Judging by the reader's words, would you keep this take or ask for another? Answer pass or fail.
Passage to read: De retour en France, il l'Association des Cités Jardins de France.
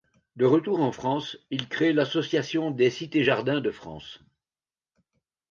fail